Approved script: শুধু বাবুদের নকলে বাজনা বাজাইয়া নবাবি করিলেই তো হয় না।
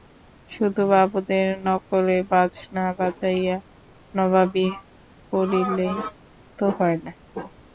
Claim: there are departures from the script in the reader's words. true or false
false